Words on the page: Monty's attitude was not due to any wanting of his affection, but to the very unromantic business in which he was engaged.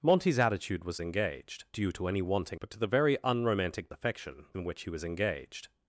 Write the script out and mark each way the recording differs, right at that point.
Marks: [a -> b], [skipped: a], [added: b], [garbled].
Monty's attitude was [not -> engaged] due to any wanting [skipped: of his affection,] but to the very unromantic [business -> affection] in which he was engaged.